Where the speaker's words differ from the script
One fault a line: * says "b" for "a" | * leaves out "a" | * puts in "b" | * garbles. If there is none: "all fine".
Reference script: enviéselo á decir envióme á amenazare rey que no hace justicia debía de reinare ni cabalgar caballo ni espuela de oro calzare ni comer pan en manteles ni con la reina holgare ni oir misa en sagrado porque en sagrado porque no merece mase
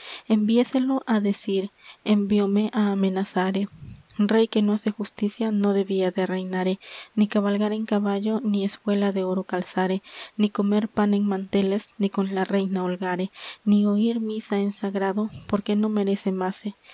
* puts in "no"
* puts in "en"
* leaves out "en sagrado porque"